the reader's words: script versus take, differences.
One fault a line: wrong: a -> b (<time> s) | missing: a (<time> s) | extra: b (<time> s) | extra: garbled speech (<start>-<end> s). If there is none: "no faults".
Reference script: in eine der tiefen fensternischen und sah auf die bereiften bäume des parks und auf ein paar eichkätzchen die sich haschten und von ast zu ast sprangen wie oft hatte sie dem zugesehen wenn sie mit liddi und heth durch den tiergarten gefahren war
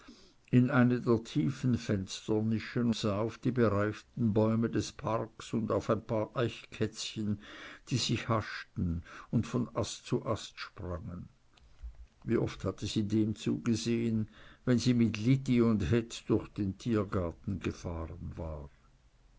missing: und (2.9 s)